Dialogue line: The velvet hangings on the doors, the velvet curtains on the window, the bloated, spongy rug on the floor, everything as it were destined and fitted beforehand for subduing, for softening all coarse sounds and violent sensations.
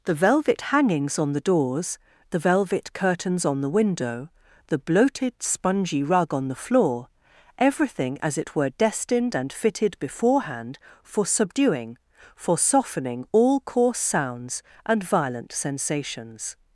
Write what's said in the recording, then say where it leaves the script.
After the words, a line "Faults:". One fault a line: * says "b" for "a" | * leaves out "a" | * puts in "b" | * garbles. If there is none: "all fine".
The velvet hangings on the doors, the velvet curtains on the window, the bloated, spongy rug on the floor, everything as it were destined and fitted beforehand for subduing, for softening all coarse sounds and violent sensations.
Faults:
all fine